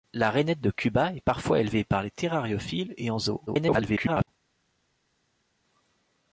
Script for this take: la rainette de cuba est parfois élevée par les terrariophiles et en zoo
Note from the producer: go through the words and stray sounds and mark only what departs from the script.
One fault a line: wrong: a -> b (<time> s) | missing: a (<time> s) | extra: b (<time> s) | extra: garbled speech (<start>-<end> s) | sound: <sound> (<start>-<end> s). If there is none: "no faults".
extra: garbled speech (3.5-4.3 s)